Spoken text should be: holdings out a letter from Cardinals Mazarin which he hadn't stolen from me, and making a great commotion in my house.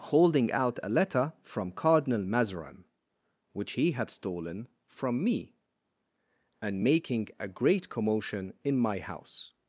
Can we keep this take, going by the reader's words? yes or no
no